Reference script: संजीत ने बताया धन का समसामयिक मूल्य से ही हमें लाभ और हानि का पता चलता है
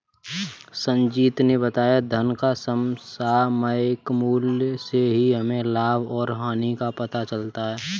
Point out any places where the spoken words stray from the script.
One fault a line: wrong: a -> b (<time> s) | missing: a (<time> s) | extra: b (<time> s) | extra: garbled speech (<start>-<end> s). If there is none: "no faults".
no faults